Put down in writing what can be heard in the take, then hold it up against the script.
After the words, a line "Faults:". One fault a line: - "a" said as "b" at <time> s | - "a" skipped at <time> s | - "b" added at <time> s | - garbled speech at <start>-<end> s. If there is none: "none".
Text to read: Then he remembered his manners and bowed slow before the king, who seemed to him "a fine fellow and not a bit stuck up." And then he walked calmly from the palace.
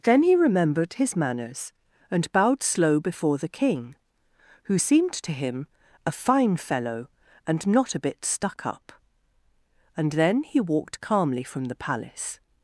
Then he remembered his manners and bowed slow before the king, who seemed to him "a fine fellow and not a bit stuck up." And then he walked calmly from the palace.
Faults:
none